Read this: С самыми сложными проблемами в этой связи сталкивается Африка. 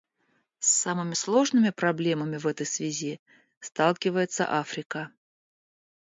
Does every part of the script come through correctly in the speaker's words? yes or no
yes